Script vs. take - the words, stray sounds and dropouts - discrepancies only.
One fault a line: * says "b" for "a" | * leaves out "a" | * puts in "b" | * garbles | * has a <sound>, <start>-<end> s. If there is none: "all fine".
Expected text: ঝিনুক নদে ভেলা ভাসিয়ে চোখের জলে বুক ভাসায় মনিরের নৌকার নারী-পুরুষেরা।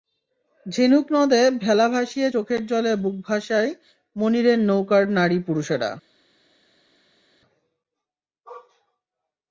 all fine